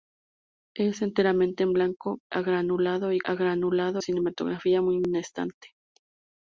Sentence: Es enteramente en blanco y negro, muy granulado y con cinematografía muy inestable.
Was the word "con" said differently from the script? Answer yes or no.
yes